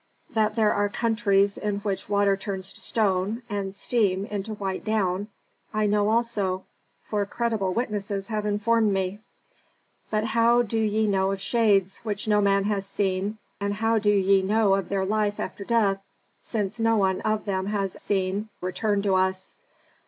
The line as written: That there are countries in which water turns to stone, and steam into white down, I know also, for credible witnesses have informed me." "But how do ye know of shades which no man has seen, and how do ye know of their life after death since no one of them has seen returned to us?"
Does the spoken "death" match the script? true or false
true